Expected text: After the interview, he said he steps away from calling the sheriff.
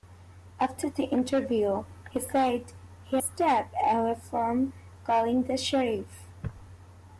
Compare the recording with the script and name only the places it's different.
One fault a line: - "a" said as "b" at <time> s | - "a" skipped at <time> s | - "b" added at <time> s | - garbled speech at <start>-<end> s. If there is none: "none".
none